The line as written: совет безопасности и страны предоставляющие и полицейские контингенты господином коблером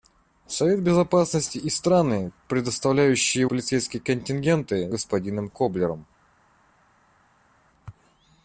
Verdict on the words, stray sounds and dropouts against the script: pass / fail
pass